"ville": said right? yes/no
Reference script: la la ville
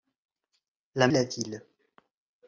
yes